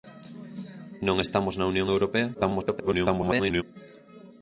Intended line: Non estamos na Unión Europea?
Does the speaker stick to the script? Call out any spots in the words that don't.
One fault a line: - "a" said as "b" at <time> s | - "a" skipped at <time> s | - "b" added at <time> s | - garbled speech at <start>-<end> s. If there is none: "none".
- garbled speech at 2.3-3.6 s